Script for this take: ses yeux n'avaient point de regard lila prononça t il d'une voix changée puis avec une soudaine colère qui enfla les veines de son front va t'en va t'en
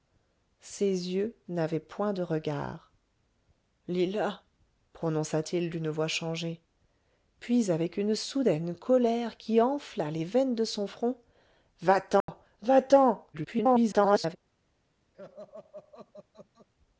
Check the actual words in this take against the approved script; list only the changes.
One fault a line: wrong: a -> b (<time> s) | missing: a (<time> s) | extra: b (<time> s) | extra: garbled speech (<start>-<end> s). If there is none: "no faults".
extra: garbled speech (13.3-14.4 s)